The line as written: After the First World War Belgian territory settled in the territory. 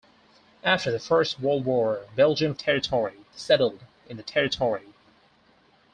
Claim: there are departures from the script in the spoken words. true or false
false